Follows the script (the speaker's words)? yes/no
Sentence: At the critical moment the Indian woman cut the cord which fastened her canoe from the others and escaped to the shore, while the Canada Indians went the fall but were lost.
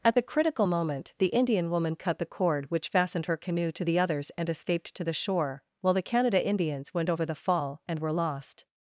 no